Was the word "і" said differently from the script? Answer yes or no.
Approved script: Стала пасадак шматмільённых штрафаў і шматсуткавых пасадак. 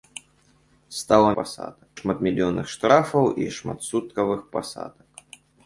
no